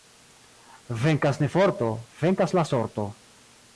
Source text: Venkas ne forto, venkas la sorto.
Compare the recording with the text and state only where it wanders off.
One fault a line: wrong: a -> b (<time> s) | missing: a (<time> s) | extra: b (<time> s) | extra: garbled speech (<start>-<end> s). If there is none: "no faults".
no faults